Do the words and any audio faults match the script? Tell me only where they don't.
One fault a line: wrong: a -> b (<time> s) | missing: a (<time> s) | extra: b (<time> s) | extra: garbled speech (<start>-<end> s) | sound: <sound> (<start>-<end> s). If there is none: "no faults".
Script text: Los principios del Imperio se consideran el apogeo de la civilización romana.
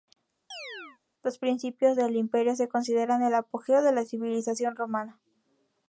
sound: chirp (0.5-1.0 s)